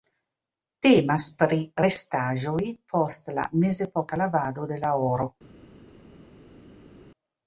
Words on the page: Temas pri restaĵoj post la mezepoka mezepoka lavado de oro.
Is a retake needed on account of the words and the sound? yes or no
yes